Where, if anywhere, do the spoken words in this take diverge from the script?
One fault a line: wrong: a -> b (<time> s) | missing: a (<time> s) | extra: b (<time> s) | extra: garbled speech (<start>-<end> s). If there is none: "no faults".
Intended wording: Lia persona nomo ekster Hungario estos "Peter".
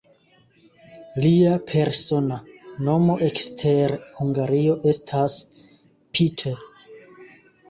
wrong: estos -> estas (4.9 s)